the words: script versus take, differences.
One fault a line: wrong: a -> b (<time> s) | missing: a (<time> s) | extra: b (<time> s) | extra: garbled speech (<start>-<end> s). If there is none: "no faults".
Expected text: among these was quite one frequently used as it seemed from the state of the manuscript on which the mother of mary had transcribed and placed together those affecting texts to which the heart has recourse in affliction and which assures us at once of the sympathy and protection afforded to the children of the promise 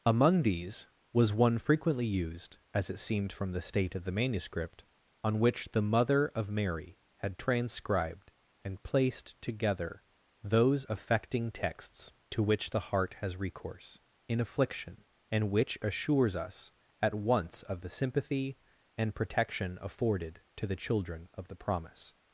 missing: quite (1.3 s)